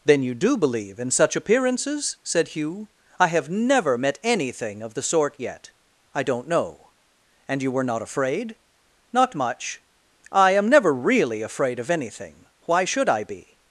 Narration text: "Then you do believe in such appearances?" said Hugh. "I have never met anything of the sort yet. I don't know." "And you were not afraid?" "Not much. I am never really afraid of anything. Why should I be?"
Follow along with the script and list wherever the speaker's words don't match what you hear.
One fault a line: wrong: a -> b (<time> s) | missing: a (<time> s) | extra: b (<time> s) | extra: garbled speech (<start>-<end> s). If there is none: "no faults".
no faults